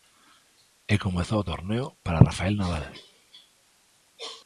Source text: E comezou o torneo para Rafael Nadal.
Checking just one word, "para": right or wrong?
right